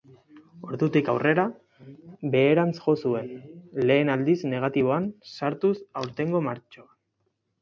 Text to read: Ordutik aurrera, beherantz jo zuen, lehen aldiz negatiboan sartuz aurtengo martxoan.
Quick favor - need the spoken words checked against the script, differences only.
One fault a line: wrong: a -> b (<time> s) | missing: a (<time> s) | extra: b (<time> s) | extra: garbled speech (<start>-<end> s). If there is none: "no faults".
no faults